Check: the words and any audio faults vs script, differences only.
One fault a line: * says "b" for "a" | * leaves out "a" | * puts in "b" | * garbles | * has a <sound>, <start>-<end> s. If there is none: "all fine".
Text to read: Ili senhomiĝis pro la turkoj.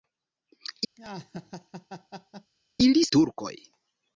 * has a laugh, 1.0-2.5 s
* leaves out "senhomiĝis pro la"